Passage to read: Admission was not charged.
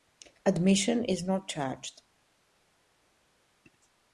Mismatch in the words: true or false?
true